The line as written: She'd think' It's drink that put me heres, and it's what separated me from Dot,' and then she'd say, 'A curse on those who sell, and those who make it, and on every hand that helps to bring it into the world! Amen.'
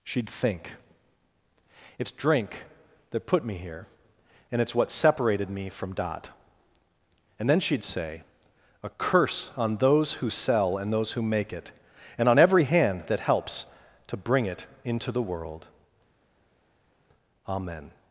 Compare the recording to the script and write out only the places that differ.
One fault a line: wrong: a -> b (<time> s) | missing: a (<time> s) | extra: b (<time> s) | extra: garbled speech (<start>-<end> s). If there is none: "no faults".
wrong: heres -> here (3.6 s)